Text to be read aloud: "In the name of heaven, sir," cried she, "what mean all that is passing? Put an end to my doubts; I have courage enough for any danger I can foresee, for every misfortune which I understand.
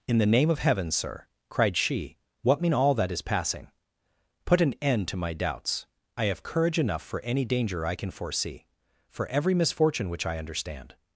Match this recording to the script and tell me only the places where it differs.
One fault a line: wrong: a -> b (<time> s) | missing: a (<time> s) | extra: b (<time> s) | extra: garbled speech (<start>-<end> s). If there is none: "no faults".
no faults